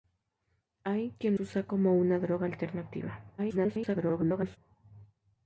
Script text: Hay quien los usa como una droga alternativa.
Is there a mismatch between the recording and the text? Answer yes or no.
yes